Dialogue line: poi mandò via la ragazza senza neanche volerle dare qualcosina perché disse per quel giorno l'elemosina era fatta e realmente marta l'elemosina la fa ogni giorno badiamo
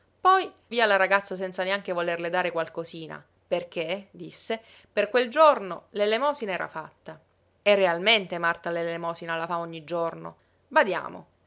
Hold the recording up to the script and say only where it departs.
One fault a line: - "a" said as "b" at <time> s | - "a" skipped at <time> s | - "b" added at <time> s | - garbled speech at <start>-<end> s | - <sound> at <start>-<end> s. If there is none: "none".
- "mandò" skipped at 0.5 s